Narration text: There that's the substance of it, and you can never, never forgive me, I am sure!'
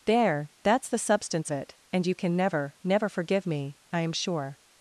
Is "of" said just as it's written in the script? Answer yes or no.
no